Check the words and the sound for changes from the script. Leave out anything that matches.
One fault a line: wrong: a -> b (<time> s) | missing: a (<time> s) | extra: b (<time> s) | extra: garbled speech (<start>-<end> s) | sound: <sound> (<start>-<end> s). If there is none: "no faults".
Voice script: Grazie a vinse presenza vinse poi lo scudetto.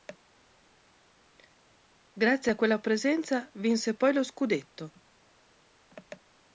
wrong: vinse -> quella (2.5 s)